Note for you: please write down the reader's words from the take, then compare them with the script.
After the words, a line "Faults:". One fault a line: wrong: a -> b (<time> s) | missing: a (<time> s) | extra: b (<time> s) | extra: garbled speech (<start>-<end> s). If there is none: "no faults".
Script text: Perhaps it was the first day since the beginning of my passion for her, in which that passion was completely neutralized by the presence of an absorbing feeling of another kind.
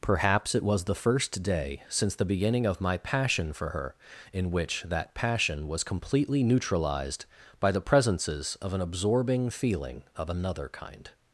Perhaps it was the first day since the beginning of my passion for her, in which that passion was completely neutralized by the presences of an absorbing feeling of another kind.
Faults:
wrong: presence -> presences (7.8 s)